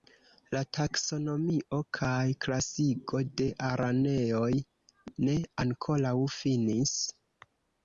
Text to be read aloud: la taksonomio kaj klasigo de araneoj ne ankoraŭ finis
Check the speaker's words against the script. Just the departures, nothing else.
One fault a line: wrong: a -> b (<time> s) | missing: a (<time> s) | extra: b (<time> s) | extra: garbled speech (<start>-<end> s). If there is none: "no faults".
no faults